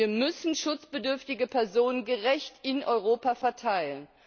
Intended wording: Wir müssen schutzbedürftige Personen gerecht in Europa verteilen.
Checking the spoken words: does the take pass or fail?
pass